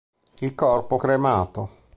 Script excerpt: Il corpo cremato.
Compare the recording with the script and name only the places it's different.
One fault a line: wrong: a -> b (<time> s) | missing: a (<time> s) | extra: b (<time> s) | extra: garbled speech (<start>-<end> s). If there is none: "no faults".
no faults